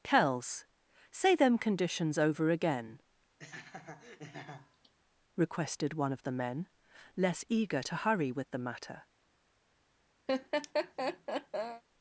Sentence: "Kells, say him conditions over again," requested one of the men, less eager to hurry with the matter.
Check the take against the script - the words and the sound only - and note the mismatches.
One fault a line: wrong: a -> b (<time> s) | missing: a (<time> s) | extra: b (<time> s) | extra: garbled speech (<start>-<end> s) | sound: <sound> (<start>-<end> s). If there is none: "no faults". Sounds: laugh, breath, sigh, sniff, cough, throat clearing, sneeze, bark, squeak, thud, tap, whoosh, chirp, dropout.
wrong: him -> them (1.4 s)
sound: laugh (3.4-4.9 s)
sound: laugh (10.3-11.8 s)